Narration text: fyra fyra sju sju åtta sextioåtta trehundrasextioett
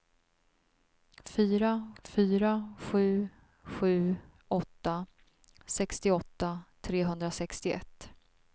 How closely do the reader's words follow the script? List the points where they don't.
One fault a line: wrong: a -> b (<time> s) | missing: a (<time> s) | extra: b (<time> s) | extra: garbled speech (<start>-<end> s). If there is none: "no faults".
no faults